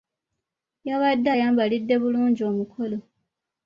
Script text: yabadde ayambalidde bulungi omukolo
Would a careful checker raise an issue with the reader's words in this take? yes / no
no